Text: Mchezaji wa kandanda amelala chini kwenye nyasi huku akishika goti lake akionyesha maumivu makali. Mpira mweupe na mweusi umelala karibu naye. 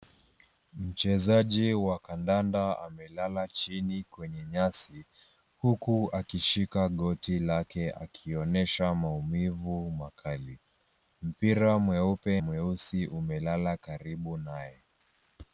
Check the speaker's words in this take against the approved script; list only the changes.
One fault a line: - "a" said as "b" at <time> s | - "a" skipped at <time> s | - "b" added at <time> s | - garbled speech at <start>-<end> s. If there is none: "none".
- "na" skipped at 12.4 s